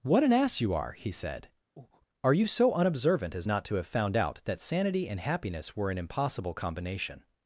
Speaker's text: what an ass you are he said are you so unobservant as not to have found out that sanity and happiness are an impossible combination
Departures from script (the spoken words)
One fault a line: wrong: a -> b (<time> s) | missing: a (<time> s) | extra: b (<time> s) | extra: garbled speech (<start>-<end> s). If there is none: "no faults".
wrong: are -> were (5.8 s)